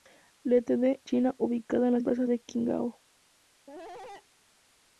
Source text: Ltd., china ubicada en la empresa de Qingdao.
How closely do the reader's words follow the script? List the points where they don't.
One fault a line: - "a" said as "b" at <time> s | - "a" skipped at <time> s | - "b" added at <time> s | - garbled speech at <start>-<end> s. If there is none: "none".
none